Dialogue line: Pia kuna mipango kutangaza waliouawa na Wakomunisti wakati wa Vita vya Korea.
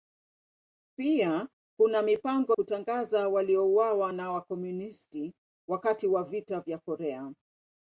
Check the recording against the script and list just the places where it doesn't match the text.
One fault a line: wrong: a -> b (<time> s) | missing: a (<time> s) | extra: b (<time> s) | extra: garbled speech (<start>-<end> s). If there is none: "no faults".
no faults